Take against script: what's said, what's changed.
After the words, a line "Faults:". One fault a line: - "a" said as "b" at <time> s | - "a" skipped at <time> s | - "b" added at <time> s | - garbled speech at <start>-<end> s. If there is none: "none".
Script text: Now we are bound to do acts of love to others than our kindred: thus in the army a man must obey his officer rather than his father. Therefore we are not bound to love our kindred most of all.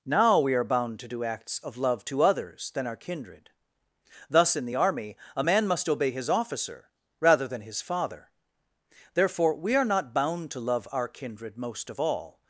Now we are bound to do acts of love to others than our kindred: thus in the army a man must obey his officer rather than his father. Therefore we are not bound to love our kindred most of all.
Faults:
none